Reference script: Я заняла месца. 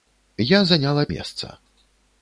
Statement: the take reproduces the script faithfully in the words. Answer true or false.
true